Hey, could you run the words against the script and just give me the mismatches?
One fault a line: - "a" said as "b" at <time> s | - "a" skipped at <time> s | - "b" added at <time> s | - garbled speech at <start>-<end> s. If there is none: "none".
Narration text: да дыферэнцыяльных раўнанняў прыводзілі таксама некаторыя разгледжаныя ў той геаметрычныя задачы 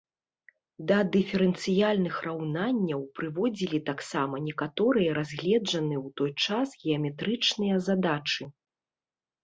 - "час" added at 6.5 s